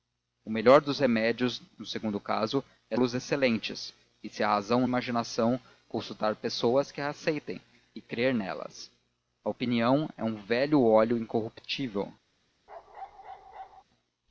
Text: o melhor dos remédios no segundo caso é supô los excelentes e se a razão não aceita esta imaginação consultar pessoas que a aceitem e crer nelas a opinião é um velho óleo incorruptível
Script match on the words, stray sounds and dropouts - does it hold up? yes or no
no